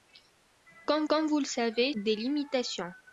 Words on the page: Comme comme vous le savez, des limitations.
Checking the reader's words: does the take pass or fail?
pass